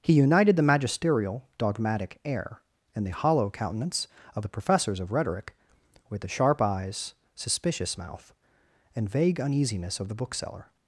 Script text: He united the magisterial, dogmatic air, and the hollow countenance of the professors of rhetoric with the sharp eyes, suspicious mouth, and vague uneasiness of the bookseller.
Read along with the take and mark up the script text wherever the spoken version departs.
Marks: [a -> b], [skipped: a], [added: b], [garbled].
He united the magisterial, dogmatic air, and the hollow countenance of the professors of rhetoric with the sharp eyes, suspicious mouth, and vague uneasiness of the bookseller.